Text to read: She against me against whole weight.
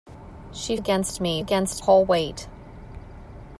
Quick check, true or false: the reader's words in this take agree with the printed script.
true